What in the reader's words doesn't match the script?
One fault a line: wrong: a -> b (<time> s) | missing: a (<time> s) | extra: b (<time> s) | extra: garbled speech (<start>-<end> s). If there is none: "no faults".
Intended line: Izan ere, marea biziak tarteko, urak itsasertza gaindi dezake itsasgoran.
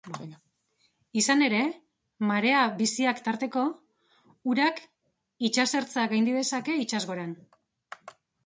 no faults